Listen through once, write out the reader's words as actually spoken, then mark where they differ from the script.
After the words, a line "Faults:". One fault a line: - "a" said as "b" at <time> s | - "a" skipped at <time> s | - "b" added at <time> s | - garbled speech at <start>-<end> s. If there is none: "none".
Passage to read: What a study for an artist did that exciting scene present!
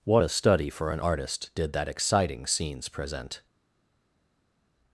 What a study for an artist did that exciting scenes present!
Faults:
- "scene" said as "scenes" at 2.5 s